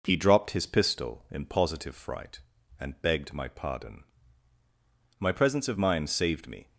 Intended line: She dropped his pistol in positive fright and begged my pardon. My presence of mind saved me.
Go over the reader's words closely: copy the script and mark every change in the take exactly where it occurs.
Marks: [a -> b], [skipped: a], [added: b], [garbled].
[She -> He] dropped his pistol in positive fright and begged my pardon. My presence of mind saved me.